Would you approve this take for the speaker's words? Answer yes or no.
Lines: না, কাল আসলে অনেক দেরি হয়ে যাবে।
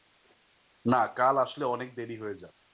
yes